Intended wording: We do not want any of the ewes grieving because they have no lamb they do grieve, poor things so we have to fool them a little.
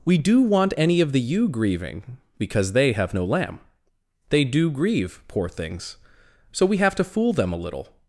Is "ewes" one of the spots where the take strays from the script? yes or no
yes